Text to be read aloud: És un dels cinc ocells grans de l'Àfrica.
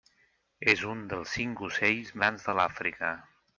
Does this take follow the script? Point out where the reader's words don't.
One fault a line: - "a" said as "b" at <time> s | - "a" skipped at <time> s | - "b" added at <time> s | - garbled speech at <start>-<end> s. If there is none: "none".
none